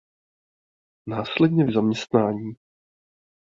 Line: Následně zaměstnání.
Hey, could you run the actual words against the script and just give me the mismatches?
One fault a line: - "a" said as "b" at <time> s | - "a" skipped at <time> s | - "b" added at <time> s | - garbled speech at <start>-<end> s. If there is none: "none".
none